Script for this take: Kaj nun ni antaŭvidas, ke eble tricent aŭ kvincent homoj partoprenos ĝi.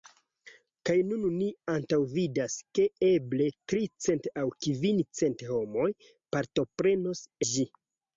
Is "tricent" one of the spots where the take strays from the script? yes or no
no